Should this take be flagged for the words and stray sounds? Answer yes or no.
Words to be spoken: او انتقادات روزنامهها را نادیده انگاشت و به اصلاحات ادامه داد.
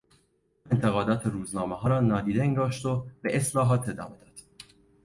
no